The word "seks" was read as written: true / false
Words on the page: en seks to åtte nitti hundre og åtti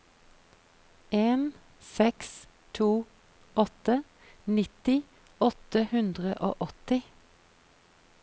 true